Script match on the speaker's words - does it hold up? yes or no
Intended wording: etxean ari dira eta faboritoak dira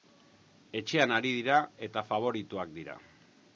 yes